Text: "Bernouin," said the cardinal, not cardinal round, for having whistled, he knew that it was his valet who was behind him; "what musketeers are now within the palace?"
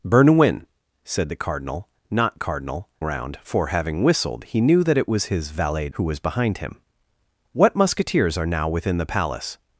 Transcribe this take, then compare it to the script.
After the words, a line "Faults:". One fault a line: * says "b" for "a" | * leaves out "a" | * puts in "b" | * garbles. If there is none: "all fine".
"Bernouin," said the cardinal, not cardinal round, for having whistled, he knew that it was his valet who was behind him; "what musketeers are now within the palace?"
Faults:
all fine